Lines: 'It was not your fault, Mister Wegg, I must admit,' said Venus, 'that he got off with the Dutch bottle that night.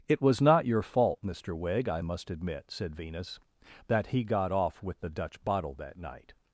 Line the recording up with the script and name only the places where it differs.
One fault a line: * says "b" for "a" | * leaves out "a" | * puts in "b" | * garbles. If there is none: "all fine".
all fine